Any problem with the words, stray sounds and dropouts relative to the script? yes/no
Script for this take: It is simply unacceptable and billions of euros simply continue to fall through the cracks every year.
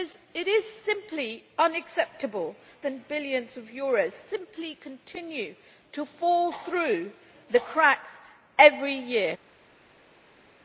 no